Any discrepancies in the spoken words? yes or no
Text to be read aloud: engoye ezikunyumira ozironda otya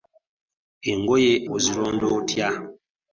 yes